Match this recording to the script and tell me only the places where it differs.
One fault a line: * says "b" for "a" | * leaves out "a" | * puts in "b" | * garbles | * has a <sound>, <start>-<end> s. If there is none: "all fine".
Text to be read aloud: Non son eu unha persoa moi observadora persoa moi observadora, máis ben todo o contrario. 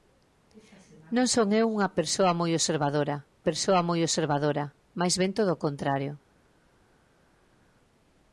all fine